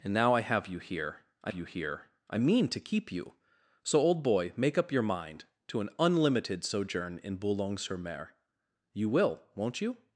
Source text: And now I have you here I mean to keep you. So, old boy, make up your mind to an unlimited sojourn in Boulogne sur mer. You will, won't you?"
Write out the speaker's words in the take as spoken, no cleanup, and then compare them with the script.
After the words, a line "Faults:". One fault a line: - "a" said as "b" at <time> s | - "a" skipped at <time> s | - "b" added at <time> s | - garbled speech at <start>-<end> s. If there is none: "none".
And now I have you here I you here I mean to keep you. So, old boy, make up your mind to an unlimited sojourn in Boulogne sur mer. You will, won't you?"
Faults:
- "you here I" added at 1.5 s